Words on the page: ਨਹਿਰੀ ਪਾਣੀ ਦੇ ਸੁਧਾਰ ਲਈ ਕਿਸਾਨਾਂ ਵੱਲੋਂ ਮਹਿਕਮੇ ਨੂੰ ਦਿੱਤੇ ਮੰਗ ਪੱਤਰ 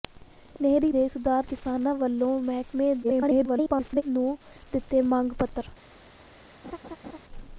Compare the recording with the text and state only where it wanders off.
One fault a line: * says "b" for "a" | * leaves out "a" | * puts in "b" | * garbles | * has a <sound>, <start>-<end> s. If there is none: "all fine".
* leaves out "ਪਾਣੀ"
* leaves out "ਲਈ"
* garbles
* has a laugh, 6.6-7.2 s